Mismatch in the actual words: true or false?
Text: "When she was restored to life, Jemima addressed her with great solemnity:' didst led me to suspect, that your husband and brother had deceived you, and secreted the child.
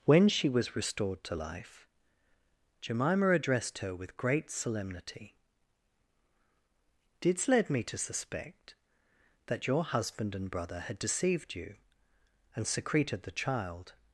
false